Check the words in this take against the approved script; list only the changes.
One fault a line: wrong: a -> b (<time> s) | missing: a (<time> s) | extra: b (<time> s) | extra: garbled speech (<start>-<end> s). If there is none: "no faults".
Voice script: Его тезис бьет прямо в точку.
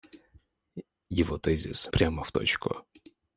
missing: бьет (1.9 s)